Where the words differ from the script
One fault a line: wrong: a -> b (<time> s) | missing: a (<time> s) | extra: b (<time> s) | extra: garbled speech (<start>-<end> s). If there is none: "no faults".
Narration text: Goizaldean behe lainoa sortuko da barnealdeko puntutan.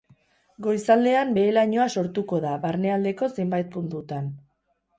extra: zenbait (3.4 s)